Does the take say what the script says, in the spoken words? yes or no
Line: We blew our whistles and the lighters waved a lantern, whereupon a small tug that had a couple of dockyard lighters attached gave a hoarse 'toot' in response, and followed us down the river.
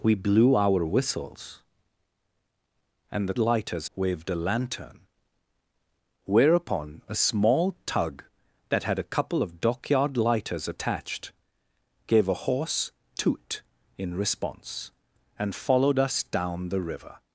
yes